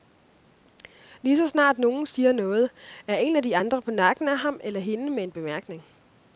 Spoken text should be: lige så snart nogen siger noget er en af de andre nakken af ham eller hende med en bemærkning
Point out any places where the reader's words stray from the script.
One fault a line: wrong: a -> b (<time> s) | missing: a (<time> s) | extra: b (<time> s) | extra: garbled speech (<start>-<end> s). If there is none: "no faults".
extra: på (3.8 s)